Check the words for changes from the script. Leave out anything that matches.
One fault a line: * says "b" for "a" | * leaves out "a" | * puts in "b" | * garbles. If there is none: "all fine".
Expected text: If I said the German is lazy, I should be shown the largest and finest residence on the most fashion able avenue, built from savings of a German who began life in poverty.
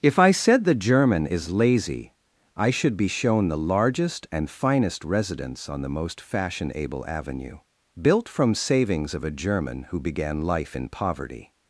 all fine